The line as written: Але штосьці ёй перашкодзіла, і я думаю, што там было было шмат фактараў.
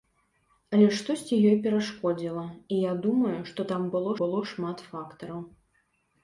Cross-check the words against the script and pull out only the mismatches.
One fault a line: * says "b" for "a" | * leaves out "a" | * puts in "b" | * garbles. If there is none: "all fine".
all fine